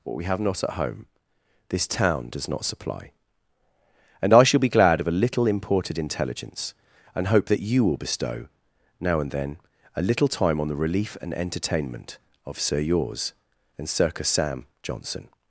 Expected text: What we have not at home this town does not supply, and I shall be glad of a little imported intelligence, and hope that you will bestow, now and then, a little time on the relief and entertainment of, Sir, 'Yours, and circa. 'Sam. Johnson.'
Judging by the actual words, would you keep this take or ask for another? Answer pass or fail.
pass